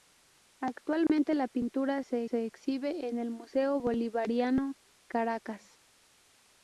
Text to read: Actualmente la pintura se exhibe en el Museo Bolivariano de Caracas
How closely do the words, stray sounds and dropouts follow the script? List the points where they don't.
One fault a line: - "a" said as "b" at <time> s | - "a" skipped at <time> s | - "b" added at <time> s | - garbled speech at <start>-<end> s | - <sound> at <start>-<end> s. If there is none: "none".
- dropout at 1.1-1.1 s
- "se" added at 2.2 s
- "de" skipped at 4.7 s